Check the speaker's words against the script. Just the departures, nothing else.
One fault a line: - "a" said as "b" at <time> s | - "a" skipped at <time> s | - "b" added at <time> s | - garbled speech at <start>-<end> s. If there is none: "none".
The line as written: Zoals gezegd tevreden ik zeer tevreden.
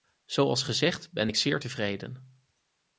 - "tevreden" said as "ben" at 1.1 s